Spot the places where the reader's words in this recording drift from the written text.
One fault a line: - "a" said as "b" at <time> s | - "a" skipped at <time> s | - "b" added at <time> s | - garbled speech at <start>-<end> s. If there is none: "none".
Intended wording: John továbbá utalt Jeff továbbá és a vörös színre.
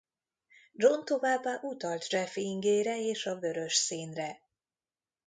- "továbbá" said as "ingére" at 2.3 s